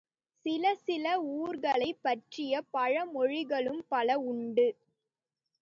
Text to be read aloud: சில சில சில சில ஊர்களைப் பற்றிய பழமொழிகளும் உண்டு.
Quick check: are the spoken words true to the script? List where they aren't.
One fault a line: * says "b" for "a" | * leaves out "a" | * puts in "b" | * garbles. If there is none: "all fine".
* leaves out "சில சில"
* puts in "பல"